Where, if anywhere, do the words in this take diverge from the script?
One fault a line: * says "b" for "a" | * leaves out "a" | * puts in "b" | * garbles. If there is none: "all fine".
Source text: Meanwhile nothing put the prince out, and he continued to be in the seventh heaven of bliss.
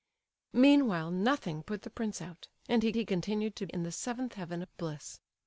* puts in "he"
* leaves out "be"